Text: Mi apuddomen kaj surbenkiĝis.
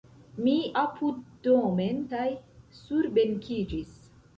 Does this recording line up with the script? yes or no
yes